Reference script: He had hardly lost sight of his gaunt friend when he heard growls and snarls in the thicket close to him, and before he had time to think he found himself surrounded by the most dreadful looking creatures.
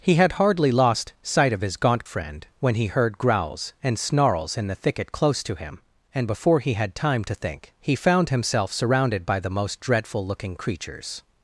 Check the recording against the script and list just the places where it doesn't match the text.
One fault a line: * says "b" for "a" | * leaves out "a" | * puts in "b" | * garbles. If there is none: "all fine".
all fine